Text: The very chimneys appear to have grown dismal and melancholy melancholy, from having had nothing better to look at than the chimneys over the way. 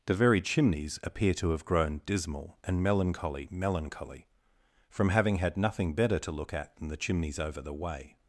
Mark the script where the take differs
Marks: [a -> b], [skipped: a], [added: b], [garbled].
The very chimneys appear to have grown dismal and melancholy melancholy, from having had nothing better to look at than the chimneys over the way.